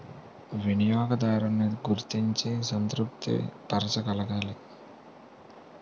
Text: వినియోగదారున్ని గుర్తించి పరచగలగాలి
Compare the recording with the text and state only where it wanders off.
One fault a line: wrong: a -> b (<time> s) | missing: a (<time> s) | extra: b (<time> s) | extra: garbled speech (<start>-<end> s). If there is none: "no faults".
extra: సంతృప్తి (2.6 s)